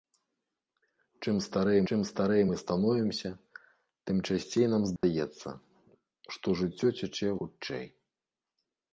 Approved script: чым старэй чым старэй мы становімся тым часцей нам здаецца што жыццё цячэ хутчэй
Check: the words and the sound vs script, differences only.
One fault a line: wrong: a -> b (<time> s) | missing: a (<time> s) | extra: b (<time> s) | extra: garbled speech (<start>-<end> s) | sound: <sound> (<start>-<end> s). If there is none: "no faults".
sound: dropout (5.0-5.0 s)